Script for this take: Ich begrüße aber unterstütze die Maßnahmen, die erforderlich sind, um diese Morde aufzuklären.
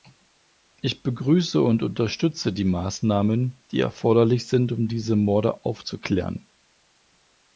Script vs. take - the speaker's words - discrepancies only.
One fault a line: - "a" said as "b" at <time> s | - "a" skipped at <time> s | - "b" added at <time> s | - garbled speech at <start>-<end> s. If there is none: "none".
- "aber" said as "und" at 1.6 s